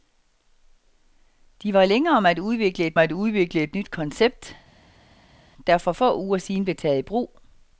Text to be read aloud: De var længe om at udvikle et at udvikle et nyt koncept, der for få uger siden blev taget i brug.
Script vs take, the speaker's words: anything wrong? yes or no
no